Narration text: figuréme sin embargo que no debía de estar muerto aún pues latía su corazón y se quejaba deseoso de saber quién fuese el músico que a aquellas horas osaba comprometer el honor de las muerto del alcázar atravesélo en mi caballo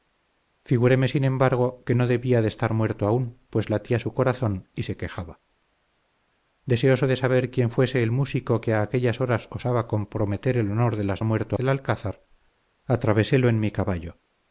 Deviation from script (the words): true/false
false